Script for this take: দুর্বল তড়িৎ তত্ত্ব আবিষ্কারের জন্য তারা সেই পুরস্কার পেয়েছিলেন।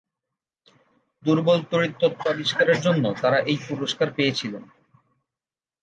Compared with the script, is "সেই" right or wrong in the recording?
wrong